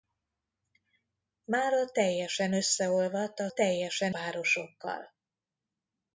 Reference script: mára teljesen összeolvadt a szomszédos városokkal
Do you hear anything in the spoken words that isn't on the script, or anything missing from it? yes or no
yes